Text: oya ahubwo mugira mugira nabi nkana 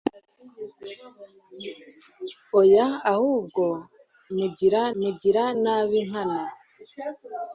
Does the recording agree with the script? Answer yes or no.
yes